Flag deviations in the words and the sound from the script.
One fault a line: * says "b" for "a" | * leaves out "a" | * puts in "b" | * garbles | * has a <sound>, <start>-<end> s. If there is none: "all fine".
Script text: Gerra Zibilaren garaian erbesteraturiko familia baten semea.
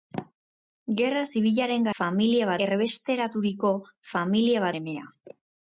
* says "familia" for "garaian"
* leaves out "baten"